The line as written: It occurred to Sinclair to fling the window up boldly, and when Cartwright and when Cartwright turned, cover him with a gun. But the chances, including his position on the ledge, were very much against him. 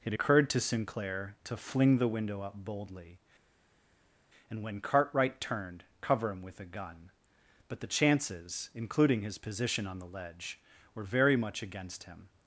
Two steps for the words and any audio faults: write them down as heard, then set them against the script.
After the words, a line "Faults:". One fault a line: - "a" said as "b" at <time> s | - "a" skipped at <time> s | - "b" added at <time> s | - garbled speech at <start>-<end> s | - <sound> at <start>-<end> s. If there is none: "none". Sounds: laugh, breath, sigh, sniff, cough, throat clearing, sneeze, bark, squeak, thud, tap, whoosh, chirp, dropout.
It occurred to Sinclair to fling the window up boldly, and when Cartwright turned, cover him with a gun. But the chances, including his position on the ledge, were very much against him.
Faults:
- "and when Cartwright" skipped at 5.4 s